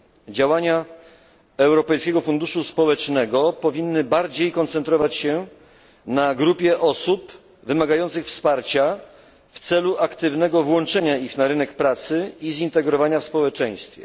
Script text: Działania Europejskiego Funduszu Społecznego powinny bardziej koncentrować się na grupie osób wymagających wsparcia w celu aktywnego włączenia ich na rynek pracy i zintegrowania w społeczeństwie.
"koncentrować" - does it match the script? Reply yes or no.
yes